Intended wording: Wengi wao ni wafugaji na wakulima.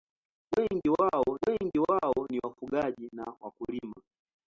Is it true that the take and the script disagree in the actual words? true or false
true